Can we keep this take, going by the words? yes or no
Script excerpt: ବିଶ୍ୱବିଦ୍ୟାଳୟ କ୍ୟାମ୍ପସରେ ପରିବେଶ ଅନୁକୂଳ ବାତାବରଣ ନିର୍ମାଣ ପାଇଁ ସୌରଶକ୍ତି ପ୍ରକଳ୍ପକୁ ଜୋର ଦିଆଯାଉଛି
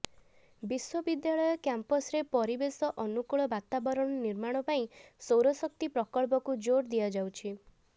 yes